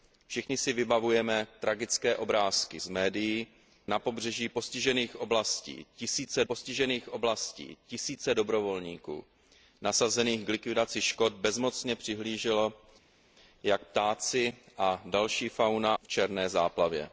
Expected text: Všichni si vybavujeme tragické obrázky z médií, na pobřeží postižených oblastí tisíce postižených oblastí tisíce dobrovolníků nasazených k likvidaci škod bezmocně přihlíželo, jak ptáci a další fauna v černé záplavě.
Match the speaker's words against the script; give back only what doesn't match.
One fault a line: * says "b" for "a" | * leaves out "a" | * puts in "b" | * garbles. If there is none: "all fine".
all fine